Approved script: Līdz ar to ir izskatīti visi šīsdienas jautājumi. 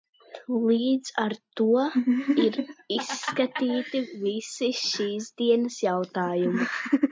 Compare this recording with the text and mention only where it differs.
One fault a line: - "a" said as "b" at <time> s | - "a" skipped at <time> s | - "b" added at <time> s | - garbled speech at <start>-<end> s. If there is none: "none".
none